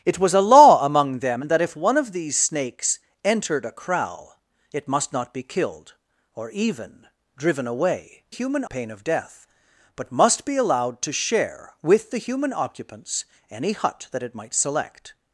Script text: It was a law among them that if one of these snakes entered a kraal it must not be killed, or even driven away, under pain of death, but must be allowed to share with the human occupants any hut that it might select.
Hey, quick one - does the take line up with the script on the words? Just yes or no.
no